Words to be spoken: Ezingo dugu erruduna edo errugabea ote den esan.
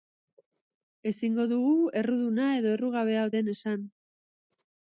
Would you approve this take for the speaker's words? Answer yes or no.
no